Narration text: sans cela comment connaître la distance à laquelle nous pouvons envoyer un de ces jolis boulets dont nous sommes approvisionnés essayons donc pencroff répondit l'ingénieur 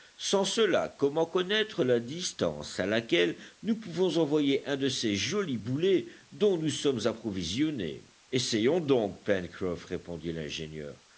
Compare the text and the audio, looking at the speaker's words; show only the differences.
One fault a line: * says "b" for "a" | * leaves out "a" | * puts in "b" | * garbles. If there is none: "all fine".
all fine